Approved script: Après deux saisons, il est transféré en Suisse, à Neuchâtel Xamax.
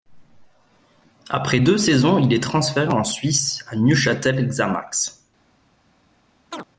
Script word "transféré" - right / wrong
right